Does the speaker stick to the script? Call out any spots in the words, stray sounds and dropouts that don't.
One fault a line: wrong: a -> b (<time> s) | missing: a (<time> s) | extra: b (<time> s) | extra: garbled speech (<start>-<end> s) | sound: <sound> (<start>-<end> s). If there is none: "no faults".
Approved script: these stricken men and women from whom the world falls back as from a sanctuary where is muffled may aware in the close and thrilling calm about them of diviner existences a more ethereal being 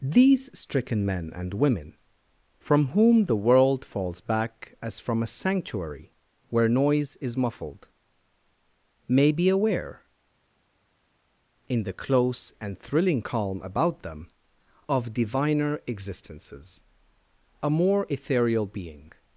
extra: noise (6.7 s)
extra: be (9.3 s)